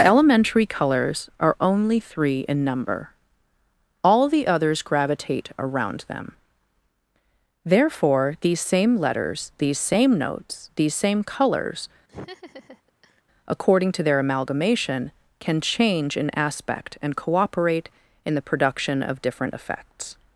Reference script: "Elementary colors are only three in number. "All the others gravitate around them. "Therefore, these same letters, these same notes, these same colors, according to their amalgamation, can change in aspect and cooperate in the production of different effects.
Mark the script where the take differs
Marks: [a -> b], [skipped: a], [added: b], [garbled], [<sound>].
"Elementary colors are only three in number. "All the others gravitate around them. "Therefore, these same letters, these same notes, these same colors, [laugh] according to their amalgamation, can change in aspect and cooperate in the production of different effects.